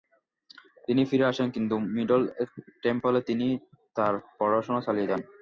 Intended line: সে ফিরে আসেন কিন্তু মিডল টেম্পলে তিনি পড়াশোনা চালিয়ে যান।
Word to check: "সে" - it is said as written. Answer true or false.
false